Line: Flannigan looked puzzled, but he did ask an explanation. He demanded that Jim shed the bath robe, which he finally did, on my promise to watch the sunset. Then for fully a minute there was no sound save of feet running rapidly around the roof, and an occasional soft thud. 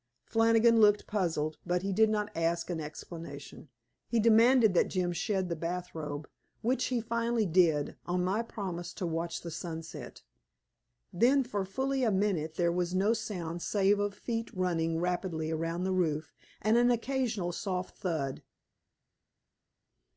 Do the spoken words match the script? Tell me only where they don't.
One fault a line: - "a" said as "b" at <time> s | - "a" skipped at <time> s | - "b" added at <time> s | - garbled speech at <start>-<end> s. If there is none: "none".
- "not" added at 2.1 s